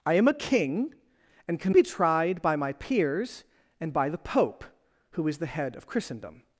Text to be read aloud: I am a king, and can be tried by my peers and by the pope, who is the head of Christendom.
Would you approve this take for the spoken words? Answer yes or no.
yes